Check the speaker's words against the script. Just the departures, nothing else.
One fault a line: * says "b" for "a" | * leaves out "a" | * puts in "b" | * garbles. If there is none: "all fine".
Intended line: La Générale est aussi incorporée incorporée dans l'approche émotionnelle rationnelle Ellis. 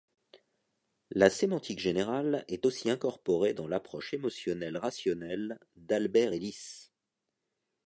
* puts in "Sémantique"
* leaves out "incorporée"
* puts in "d'Albert"